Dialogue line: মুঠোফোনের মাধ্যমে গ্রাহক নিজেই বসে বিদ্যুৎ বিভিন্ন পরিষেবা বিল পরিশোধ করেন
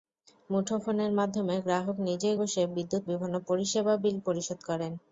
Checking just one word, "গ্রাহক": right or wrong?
right